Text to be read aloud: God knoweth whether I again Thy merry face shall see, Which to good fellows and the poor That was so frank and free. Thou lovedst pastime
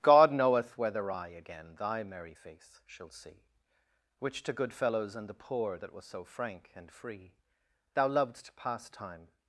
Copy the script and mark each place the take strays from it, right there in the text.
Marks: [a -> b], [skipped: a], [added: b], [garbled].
God knoweth whether I again Thy merry face shall see, Which to good fellows and the poor That was so frank and free. Thou lovedst pastime